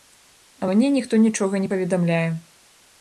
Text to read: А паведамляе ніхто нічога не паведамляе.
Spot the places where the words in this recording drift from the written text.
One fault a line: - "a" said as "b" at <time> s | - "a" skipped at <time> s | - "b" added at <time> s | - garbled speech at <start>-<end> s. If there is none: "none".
- "паведамляе" said as "мне" at 0.7 s